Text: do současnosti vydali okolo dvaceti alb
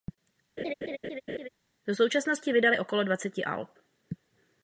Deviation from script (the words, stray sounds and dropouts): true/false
true